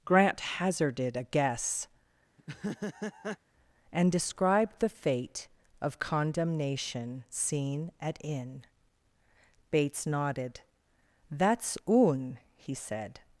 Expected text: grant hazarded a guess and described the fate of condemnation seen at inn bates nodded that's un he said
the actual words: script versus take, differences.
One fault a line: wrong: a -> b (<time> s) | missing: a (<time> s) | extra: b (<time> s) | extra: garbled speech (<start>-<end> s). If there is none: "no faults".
no faults